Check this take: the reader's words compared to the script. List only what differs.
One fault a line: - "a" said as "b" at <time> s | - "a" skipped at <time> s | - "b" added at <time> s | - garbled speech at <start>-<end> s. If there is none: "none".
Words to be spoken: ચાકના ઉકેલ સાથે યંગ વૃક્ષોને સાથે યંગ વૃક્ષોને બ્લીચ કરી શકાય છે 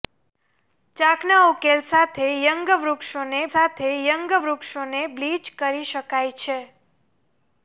none